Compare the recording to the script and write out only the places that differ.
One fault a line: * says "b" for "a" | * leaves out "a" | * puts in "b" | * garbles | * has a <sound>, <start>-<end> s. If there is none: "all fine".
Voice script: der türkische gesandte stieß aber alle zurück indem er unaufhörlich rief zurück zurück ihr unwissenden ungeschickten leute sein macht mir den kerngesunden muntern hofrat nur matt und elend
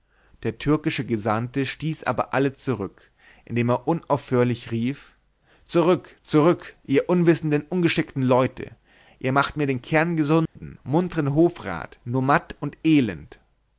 * says "ihr" for "sein"
* has a dropout, 10.5-10.6 s